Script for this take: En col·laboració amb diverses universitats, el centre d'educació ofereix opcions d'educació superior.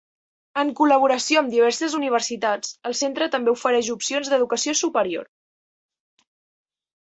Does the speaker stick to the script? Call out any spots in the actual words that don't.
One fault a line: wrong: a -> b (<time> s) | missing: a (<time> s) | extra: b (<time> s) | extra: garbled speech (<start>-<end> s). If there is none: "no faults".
wrong: d'educació -> també (3.4 s)